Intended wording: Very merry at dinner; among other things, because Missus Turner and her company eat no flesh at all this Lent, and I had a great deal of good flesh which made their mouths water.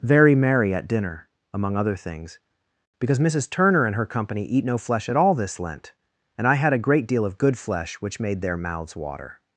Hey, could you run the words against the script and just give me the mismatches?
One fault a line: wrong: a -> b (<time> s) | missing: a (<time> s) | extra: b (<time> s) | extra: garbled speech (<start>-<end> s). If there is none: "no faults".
no faults